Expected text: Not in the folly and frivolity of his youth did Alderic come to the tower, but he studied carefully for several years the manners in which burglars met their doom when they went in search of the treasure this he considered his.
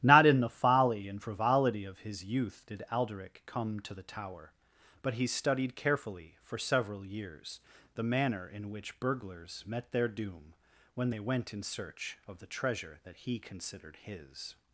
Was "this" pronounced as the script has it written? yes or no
no